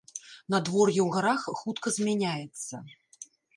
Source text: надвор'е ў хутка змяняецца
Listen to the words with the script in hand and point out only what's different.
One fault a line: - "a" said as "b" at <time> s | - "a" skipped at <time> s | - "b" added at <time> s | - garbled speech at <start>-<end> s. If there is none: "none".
- "гарах" added at 1.1 s